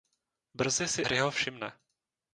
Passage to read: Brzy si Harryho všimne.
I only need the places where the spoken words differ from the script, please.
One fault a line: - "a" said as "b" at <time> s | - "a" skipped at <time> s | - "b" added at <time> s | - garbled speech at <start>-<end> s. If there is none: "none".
none